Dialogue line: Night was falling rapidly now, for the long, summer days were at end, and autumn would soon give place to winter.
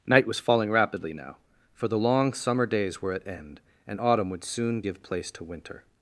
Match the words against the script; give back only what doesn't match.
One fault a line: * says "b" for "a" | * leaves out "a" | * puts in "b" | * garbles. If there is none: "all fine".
all fine